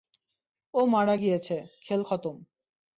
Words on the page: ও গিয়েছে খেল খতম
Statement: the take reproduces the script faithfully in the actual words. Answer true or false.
false